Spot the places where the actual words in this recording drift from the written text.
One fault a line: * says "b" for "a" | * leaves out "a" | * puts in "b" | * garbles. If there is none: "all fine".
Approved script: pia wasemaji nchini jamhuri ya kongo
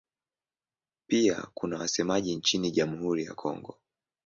* puts in "kuna"